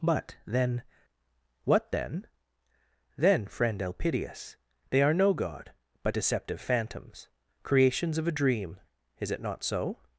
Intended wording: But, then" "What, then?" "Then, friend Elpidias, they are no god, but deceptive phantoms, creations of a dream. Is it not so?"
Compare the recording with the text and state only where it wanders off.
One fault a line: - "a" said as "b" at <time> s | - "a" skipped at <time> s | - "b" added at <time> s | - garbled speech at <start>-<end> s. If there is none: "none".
none